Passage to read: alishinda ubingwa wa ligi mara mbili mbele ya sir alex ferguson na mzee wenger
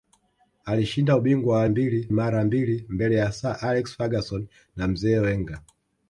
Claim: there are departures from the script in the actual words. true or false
true